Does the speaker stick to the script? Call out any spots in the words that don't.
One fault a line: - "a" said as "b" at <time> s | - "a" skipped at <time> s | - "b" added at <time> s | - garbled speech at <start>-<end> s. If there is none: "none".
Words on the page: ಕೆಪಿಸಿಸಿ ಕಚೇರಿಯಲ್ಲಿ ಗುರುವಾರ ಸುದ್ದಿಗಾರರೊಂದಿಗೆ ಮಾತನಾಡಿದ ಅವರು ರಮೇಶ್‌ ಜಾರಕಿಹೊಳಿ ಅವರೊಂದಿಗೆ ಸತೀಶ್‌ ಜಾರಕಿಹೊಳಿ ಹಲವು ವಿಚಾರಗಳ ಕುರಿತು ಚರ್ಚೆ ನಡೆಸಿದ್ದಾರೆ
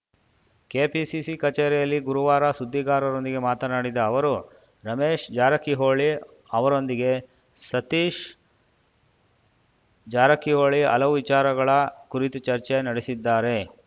none